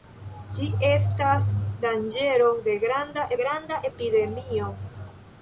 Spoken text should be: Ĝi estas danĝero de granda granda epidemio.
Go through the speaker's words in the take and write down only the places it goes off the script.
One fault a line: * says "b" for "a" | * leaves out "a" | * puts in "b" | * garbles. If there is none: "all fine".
all fine